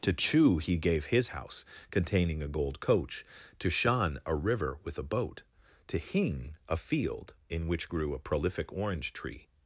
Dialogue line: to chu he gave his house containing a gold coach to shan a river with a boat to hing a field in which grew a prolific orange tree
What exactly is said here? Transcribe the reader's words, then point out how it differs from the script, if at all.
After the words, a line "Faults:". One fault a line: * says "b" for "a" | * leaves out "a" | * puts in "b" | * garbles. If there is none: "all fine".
to chu he gave his house containing a gold coach to shan a river with a boat to hing a field in which grew a prolific orange tree
Faults:
all fine